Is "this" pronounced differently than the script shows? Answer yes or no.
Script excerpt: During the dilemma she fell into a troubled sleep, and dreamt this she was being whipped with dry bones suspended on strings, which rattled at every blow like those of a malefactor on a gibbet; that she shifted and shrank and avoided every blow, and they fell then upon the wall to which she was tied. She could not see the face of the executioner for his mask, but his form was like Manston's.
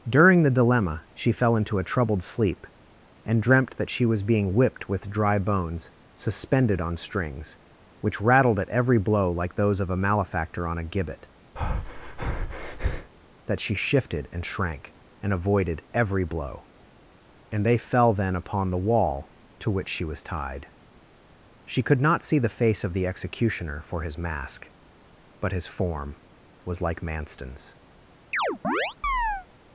yes